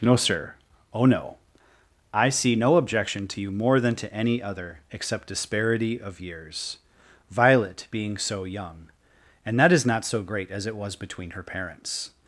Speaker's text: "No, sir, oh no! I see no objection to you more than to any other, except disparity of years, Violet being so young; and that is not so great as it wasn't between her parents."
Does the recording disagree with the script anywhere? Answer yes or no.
yes